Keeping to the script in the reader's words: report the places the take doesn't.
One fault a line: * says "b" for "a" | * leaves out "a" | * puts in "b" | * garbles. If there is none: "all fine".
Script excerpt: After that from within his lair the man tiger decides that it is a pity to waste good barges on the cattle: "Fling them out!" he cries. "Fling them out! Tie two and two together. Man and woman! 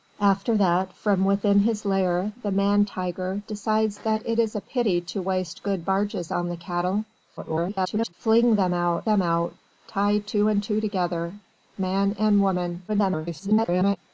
* garbles
* leaves out "he cries Fling"
* garbles